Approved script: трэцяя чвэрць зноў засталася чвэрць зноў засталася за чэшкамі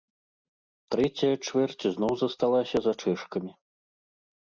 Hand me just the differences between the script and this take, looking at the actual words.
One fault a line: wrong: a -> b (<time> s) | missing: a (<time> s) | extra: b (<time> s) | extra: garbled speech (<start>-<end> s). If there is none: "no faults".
missing: чвэрць зноў засталася (2.8 s)